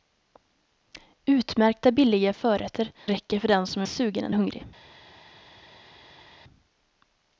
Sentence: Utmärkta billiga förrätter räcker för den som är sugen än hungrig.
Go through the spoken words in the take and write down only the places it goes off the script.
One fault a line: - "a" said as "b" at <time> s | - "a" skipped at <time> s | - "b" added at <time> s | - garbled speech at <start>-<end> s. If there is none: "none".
none